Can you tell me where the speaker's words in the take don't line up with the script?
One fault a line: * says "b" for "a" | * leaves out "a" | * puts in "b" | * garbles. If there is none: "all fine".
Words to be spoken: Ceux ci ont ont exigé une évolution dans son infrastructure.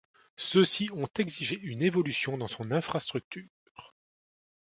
* leaves out "ont"